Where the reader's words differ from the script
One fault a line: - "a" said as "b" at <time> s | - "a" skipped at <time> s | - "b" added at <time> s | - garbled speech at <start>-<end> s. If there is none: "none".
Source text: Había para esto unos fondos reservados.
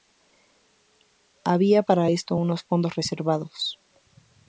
none